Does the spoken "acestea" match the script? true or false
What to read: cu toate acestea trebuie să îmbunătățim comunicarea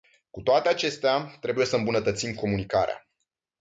true